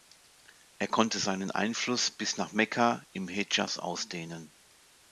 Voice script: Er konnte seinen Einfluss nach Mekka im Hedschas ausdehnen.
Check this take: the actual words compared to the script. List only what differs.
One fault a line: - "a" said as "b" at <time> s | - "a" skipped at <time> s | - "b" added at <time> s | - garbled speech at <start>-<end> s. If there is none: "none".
- "bis" added at 2.1 s